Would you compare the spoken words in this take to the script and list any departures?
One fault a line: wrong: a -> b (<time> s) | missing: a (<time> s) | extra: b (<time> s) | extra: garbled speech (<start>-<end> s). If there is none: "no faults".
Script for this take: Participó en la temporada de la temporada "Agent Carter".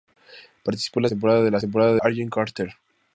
no faults